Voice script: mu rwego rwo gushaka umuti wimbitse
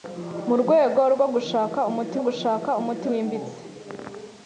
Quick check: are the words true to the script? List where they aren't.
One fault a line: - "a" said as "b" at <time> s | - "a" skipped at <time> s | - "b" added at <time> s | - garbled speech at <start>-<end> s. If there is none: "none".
- "gushaka umuti" added at 2.2 s